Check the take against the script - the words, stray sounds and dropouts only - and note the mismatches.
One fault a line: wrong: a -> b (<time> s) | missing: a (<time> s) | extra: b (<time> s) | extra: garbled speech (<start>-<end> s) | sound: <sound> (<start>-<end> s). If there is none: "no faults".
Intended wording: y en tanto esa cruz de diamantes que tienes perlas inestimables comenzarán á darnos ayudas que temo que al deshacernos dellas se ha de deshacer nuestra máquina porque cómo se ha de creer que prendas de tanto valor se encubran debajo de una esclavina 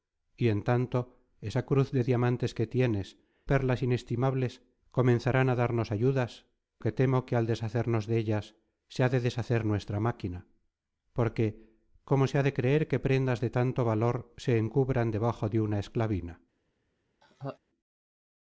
sound: laugh (17.2-17.6 s)